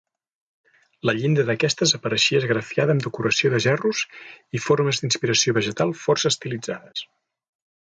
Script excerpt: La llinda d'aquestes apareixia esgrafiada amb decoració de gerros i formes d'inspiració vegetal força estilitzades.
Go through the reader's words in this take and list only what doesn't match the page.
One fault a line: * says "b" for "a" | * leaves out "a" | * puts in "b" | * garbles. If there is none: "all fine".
all fine